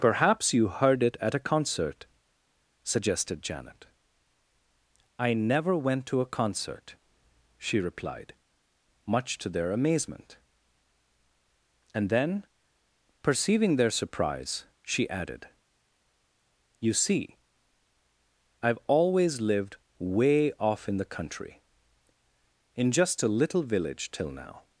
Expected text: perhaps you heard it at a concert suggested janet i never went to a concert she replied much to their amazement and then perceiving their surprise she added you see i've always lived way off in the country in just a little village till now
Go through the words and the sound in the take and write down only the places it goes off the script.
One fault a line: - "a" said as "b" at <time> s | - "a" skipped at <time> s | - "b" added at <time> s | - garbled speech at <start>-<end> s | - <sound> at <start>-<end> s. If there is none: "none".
none